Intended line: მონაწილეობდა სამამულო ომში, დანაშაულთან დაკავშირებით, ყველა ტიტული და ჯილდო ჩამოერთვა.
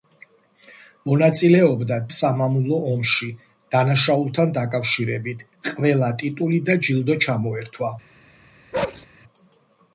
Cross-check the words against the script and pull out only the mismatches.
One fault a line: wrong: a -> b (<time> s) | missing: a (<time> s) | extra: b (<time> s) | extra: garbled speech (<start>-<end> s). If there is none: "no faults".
no faults